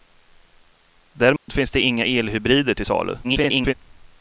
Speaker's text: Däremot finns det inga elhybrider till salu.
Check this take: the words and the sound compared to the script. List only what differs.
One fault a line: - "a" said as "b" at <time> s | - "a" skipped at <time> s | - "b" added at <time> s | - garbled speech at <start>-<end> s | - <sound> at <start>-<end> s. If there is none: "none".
- dropout at 1.4-1.5 s
- garbled speech at 3.2-3.7 s